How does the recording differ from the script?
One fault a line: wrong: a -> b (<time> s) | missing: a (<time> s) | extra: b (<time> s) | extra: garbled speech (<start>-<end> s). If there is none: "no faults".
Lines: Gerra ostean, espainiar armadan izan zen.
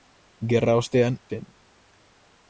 missing: espainiar armadan izan (1.2 s)